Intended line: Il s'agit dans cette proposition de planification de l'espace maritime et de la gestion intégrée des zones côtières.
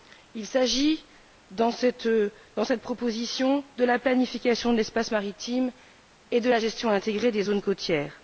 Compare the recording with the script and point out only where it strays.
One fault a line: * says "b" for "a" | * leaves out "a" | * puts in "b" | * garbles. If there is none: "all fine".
* puts in "la"